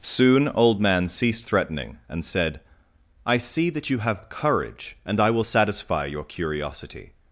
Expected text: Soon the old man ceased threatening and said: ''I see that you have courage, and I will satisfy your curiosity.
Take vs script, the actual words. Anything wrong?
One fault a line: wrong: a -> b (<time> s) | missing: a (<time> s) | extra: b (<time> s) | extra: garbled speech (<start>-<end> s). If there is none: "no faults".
missing: the (0.5 s)